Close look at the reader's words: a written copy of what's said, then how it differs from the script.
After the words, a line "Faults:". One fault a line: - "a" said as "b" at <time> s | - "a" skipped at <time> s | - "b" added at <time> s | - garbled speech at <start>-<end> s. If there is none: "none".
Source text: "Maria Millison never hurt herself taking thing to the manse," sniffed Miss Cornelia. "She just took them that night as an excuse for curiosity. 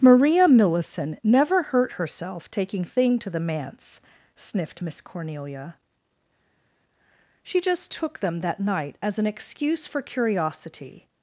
"Maria Millison never hurt herself taking thing to the manse," sniffed Miss Cornelia. "She just took them that night as an excuse for curiosity.
Faults:
none